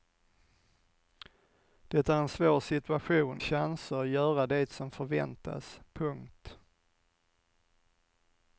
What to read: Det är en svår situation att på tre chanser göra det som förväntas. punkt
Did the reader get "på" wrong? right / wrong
wrong